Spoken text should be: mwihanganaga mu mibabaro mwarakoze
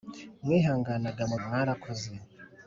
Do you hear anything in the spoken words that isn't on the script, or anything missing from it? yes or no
yes